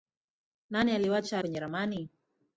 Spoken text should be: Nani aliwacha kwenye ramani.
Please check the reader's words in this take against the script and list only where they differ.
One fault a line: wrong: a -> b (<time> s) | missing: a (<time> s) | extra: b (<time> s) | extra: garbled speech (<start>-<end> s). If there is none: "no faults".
no faults